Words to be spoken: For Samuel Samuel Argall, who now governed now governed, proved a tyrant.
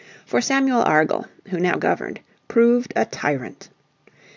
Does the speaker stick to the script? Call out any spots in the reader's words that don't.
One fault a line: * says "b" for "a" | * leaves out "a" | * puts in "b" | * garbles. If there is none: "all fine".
* leaves out "Samuel"
* leaves out "now governed"